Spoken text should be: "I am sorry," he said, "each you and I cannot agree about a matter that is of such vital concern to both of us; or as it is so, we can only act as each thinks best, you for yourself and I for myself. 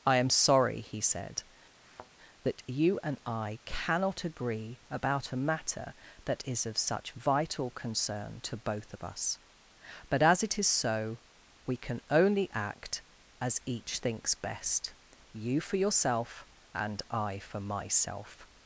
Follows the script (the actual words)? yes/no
no